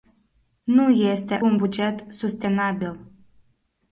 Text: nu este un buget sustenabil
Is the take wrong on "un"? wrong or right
right